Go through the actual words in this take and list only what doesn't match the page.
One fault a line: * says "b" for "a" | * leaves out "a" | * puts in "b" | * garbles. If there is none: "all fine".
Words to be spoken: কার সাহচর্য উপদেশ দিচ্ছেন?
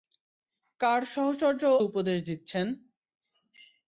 all fine